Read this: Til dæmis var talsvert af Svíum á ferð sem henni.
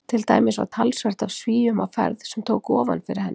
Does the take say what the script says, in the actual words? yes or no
no